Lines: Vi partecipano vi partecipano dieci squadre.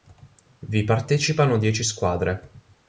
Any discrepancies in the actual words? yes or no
yes